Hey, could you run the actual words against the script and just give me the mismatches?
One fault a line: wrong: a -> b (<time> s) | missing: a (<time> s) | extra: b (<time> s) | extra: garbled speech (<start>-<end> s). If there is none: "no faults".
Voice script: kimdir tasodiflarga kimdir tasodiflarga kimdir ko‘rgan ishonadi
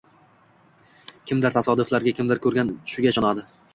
wrong: tasodiflarga kimdir ko‘rgan -> ko‘rgan tushiga (2.5 s)